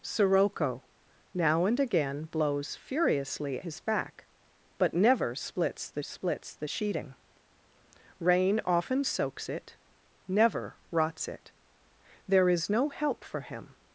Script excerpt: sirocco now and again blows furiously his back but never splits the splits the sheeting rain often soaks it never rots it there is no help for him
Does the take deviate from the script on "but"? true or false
false